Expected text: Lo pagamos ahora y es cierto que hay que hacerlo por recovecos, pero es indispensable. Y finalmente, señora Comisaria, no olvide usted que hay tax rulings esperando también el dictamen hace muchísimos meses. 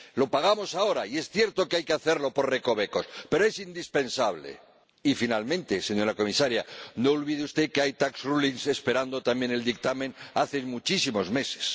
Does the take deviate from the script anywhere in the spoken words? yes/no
no